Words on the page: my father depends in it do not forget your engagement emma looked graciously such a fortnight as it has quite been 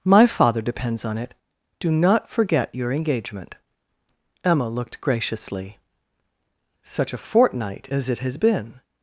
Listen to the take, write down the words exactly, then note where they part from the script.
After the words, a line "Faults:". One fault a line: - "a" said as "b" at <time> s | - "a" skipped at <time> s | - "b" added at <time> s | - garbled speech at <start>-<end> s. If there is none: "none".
my father depends on it do not forget your engagement emma looked graciously such a fortnight as it has been
Faults:
- "in" said as "on" at 1.1 s
- "quite" skipped at 8.4 s